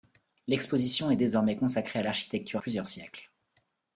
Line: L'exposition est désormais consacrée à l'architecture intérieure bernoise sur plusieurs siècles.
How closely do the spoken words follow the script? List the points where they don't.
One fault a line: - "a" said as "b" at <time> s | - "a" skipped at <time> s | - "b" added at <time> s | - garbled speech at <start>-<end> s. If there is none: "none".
- "intérieure bernoise sur" skipped at 2.6 s